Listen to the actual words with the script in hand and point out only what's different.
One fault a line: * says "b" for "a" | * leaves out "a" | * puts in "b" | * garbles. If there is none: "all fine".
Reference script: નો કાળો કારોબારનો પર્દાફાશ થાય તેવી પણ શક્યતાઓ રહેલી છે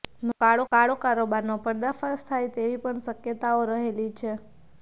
* puts in "કાળો"